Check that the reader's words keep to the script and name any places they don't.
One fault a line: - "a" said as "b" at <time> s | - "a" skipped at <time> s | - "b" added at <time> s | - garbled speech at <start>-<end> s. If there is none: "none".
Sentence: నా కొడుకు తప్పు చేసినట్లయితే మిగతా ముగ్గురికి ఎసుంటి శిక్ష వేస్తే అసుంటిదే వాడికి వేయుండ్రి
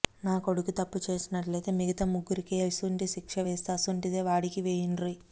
none